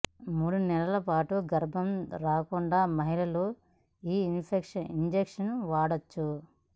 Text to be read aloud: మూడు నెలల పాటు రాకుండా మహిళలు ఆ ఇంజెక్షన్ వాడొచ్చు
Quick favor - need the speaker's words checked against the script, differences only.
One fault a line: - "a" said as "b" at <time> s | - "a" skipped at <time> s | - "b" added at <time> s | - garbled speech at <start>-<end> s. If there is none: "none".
- "గర్భం" added at 1.5 s
- "ఆ" said as "ఈ" at 4.0 s